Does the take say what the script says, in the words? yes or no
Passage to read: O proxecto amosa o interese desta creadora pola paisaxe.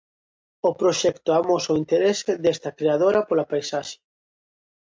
yes